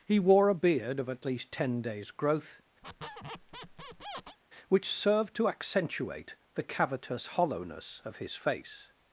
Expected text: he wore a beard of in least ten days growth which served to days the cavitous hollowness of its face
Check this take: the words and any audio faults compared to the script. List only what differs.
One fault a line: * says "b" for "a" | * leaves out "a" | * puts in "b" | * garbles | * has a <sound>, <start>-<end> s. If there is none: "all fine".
* says "at" for "in"
* has a squeak, 2.8-4.4 s
* says "accentuate" for "days"
* says "his" for "its"